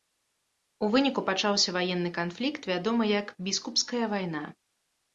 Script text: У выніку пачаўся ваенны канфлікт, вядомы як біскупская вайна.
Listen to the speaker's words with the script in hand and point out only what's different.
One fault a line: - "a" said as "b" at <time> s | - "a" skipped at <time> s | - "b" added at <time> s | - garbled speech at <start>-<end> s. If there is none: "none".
none